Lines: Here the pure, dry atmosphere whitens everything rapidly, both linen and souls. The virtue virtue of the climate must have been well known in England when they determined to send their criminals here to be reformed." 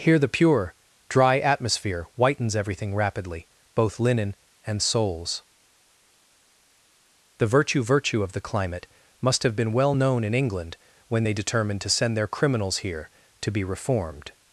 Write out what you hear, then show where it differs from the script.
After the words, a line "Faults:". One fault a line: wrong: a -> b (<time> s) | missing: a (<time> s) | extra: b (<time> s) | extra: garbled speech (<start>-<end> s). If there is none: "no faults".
Here the pure, dry atmosphere whitens everything rapidly, both linen and souls. The virtue virtue of the climate must have been well known in England when they determined to send their criminals here to be reformed."
Faults:
no faults